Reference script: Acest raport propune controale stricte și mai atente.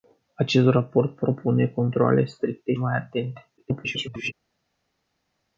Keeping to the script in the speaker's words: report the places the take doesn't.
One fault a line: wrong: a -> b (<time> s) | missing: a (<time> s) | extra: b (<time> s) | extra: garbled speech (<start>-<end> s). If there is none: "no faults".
missing: și (2.8 s)
extra: garbled speech (3.6-4.3 s)